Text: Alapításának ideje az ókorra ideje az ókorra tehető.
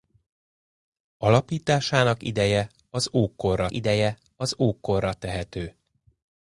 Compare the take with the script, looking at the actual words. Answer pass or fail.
pass